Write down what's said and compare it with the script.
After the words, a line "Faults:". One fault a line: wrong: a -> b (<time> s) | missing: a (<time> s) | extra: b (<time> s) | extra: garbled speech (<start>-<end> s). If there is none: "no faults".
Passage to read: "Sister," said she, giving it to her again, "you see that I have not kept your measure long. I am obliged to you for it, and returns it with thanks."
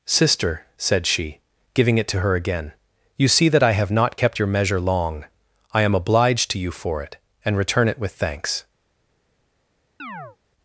"Sister," said she, giving it to her again, "you see that I have not kept your measure long. I am obliged to you for it, and return it with thanks."
Faults:
wrong: returns -> return (7.6 s)